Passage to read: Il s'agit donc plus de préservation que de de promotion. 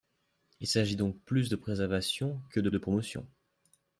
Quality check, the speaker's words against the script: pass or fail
pass